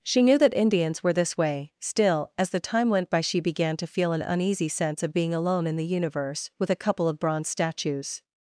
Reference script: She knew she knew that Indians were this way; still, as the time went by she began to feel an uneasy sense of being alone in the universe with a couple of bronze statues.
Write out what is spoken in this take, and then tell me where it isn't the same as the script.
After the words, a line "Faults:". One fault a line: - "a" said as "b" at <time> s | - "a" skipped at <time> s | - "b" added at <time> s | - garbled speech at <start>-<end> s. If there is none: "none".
She knew that Indians were this way; still, as the time went by she began to feel an uneasy sense of being alone in the universe with a couple of bronze statues.
Faults:
- "she knew" skipped at 0.4 s